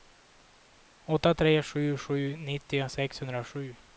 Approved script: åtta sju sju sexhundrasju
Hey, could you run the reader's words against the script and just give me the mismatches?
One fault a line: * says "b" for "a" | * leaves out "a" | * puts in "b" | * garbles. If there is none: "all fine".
* puts in "tre"
* puts in "nittio"